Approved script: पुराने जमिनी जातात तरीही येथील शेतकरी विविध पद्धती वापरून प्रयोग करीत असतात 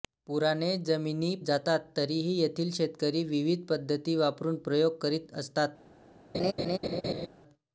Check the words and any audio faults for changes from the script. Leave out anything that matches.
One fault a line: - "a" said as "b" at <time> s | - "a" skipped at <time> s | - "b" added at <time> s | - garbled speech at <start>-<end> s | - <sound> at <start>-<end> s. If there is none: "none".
- laugh at 6.3-7.3 s